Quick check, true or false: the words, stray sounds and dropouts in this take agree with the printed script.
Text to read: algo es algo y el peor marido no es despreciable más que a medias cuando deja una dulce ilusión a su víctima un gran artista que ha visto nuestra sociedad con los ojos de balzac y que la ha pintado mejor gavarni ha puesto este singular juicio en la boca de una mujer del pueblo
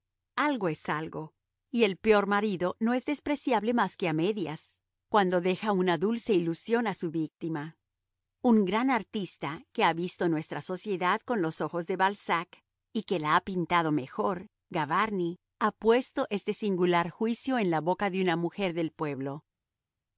true